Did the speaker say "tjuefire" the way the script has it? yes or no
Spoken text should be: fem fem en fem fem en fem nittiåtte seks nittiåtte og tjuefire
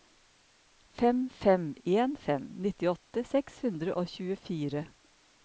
yes